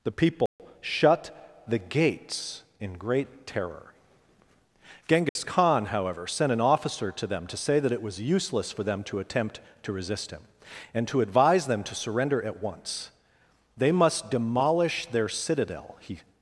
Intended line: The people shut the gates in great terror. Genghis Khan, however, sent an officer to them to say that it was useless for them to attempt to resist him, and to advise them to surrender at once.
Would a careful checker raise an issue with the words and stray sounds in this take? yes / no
yes